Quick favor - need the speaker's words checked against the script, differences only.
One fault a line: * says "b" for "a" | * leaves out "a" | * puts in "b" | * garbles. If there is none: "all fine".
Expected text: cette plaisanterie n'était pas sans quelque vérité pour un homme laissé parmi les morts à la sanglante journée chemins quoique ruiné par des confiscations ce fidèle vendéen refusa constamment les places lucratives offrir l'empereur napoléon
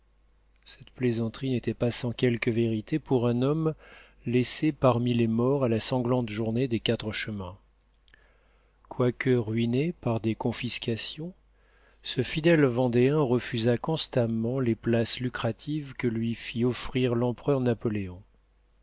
* puts in "des quatre"
* puts in "que lui fit"